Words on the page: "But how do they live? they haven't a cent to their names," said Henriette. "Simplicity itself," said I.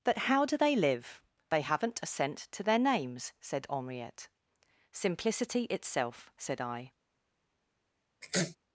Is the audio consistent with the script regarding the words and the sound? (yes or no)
no